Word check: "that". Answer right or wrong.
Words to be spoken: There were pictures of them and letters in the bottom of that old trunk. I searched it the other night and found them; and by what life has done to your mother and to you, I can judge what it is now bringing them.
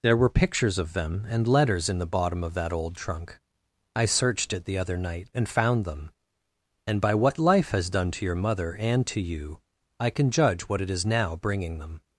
right